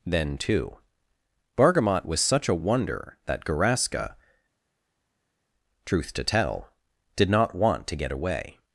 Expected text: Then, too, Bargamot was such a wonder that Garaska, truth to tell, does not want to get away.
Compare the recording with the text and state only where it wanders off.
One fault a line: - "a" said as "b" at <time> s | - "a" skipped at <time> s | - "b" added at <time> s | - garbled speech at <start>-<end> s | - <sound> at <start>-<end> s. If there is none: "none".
- "does" said as "did" at 7.2 s